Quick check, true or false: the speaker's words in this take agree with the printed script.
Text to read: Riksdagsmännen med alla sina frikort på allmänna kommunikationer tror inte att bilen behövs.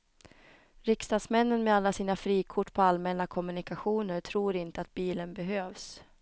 true